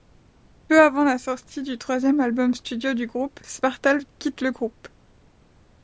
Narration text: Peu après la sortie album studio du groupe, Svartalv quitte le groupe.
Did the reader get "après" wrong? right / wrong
wrong